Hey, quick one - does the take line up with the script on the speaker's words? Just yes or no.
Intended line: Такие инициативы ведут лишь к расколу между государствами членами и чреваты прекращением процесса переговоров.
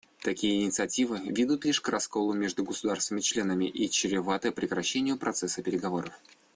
yes